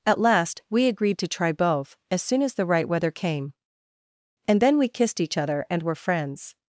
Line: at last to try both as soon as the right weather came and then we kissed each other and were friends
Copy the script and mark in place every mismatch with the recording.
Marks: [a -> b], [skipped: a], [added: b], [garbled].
at last [added: we agreed] to try both as soon as the right weather came and then we kissed each other and were friends